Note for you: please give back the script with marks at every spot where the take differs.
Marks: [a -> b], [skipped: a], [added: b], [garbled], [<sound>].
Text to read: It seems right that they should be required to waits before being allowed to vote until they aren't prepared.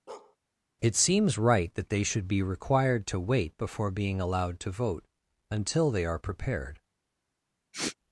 [bark] It seems right that they should be required to [waits -> wait] before being allowed to vote until they [aren't -> are] prepared. [sniff]